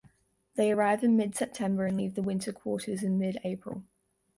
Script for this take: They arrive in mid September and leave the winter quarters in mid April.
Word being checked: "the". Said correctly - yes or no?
yes